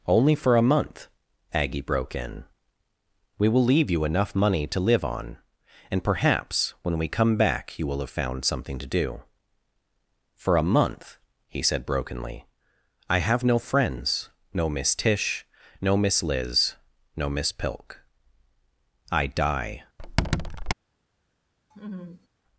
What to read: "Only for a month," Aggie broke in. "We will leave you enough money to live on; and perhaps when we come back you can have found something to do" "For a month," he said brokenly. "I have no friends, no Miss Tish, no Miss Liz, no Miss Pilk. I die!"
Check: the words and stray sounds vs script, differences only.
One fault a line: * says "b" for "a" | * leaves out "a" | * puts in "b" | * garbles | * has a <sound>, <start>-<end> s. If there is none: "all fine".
* says "will" for "can"
* has a squeak, 20.0-20.7 s
* has a laugh, 21.7-22.3 s